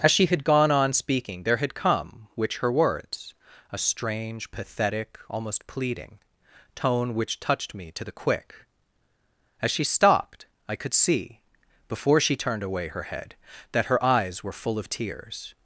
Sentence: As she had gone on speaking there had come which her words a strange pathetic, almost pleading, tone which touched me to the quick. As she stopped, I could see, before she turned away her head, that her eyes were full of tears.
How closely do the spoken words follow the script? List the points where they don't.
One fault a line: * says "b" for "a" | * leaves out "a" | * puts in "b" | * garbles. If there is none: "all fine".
all fine